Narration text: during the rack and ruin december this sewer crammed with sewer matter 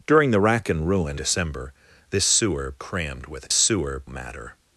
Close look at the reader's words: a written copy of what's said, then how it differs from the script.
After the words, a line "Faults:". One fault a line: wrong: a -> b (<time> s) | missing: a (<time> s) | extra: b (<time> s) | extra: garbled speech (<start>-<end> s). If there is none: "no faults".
during the rack and ruin december this sewer crammed with sewer matter
Faults:
no faults